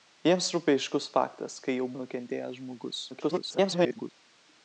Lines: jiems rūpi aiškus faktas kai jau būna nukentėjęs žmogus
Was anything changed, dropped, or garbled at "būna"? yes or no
yes